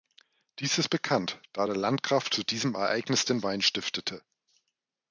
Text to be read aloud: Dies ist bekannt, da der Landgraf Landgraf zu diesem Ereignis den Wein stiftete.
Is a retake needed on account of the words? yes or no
yes